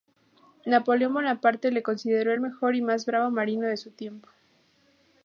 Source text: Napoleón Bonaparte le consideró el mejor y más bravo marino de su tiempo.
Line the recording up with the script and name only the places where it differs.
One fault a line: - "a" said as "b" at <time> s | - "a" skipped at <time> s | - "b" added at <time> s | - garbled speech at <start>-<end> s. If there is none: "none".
none